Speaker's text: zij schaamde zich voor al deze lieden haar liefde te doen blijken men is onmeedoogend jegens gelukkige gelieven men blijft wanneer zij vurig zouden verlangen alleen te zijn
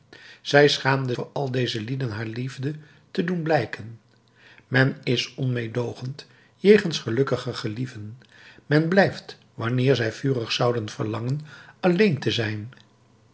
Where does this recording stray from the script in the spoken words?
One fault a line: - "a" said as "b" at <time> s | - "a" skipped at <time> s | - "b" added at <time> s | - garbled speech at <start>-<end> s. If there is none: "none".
- "zich" skipped at 1.1 s